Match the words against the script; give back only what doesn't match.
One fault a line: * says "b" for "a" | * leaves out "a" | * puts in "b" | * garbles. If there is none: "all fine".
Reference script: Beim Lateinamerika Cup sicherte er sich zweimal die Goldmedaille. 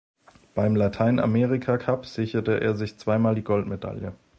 all fine